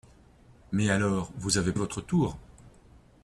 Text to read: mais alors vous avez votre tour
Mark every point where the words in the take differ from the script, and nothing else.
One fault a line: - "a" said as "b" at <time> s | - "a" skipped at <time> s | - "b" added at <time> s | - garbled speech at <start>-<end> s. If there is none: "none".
none